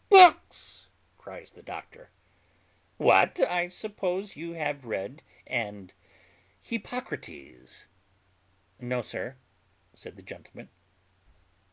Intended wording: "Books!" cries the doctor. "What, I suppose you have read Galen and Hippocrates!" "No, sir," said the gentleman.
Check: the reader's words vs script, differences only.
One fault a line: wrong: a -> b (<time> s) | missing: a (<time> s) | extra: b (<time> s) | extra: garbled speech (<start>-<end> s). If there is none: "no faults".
missing: Galen (5.2 s)